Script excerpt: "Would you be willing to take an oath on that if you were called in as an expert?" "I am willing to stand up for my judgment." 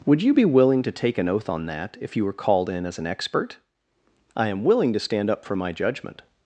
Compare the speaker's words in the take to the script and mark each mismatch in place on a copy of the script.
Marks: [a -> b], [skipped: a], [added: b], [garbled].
"Would you be willing to take an oath on that if you were called in as an expert?" "I am willing to stand up for my judgment."